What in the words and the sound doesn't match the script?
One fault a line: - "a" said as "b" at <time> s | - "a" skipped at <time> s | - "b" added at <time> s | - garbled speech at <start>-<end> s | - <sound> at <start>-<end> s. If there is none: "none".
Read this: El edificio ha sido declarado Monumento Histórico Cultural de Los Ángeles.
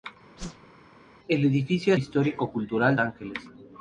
- whoosh at 0.4-0.7 s
- "sido declarado Monumento" skipped at 1.9 s
- "de Los" skipped at 3.0 s